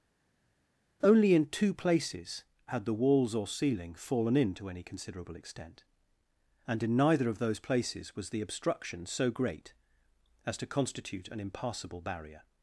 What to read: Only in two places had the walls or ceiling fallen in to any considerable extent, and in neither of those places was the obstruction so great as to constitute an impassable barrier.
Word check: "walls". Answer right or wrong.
right